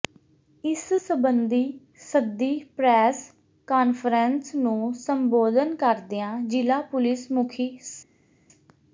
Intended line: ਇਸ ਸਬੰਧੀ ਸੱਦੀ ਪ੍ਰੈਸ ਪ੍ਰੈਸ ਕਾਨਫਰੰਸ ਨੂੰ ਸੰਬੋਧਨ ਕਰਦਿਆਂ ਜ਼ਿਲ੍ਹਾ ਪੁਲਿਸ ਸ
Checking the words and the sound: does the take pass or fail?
fail